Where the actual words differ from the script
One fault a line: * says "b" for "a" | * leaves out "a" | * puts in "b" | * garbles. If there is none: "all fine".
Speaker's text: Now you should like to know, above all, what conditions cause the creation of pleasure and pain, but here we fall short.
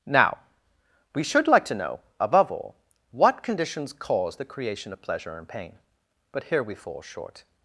* says "we" for "you"